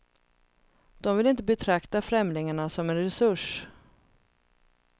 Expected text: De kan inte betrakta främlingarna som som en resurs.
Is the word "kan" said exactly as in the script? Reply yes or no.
no